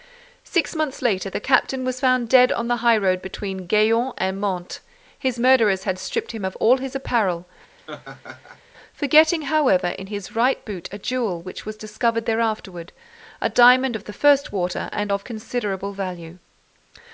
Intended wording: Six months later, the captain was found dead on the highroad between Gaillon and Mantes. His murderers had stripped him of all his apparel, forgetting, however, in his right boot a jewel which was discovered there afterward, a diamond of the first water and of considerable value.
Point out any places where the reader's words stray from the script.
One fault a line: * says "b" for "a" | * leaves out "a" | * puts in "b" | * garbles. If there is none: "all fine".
all fine